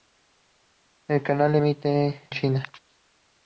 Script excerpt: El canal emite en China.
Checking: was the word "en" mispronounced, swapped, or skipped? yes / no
yes